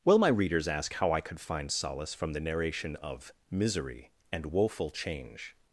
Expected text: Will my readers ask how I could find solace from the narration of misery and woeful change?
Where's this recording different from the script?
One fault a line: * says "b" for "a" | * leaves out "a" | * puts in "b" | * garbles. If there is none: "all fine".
all fine